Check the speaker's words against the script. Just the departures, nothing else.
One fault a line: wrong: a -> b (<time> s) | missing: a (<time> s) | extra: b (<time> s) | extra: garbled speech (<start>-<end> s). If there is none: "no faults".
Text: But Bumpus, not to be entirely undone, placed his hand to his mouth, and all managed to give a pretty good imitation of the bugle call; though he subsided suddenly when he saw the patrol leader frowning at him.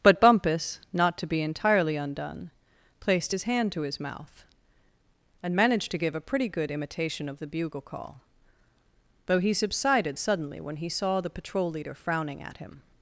missing: all (5.6 s)